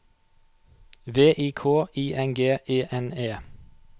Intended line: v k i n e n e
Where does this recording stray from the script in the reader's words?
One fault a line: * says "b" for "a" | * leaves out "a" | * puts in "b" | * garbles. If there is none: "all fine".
* puts in "i"
* puts in "g"